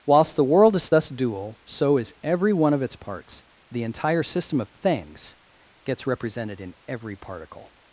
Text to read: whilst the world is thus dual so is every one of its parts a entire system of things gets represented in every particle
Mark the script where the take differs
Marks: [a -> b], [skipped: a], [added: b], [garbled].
whilst the world is thus dual so is every one of its parts [a -> the] entire system of things gets represented in every particle